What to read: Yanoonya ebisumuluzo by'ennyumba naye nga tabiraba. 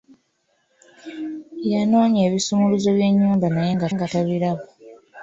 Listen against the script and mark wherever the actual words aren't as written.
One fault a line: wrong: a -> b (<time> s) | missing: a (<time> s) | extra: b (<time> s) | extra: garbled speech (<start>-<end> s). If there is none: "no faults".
extra: nga (3.9 s)